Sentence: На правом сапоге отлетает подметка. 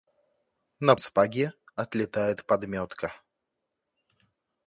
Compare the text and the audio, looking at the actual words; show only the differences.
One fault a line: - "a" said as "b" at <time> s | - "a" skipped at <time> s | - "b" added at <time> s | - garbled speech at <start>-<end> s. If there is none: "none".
- "правом" skipped at 0.9 s